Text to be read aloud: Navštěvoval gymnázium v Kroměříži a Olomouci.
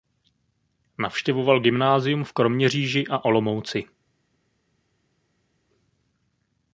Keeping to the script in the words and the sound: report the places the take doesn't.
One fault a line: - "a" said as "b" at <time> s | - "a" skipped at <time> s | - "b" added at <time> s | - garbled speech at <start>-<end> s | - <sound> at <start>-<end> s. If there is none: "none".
none